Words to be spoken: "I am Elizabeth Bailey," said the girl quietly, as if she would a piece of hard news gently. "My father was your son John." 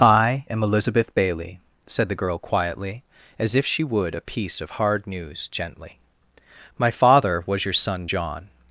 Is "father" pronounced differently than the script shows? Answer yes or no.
no